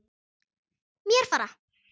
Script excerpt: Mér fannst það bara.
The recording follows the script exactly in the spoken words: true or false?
false